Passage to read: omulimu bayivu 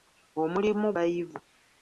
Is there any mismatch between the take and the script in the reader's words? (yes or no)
no